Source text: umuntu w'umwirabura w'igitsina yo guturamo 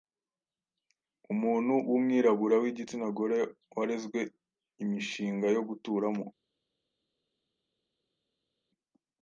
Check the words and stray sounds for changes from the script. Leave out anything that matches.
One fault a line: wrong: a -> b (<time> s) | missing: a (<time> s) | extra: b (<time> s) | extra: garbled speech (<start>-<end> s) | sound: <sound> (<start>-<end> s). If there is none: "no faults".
extra: gore warezwe Imishinga (3.2 s)